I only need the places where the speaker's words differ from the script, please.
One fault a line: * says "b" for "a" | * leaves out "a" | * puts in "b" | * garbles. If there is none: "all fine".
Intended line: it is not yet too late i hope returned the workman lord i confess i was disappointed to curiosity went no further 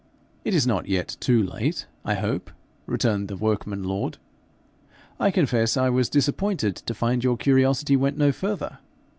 * puts in "find your"